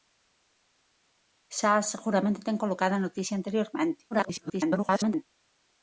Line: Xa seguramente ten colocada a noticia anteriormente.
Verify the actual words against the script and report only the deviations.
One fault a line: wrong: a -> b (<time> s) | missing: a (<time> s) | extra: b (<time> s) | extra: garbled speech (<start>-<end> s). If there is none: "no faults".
extra: garbled speech (4.1-5.3 s)